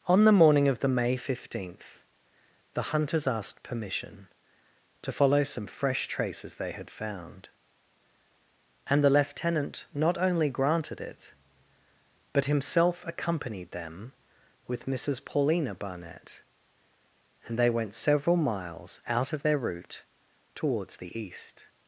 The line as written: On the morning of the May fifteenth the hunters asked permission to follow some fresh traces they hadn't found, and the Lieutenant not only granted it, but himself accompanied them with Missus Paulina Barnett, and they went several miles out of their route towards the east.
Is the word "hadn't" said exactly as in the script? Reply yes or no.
no